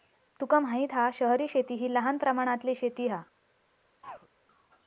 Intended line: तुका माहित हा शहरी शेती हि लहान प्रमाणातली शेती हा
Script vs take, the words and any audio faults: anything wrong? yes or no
yes